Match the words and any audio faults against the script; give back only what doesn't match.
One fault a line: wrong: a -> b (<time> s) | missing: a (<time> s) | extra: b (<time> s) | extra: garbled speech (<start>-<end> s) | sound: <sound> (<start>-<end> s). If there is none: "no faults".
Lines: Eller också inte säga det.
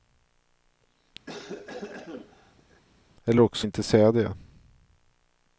sound: cough (1.3-2.8 s)